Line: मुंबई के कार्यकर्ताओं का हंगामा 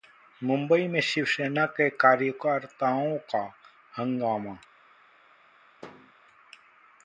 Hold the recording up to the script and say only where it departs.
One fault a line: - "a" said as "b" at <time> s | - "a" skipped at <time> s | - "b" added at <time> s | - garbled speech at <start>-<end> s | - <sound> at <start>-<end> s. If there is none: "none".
- "में शिवसेना" added at 0.9 s
- thud at 5.8-6.1 s